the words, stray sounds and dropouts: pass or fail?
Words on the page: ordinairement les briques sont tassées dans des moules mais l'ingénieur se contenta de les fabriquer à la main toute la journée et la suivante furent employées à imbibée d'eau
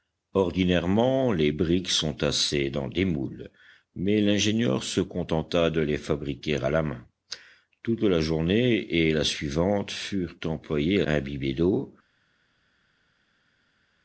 pass